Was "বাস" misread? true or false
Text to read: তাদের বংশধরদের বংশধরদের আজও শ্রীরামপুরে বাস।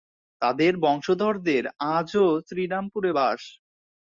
false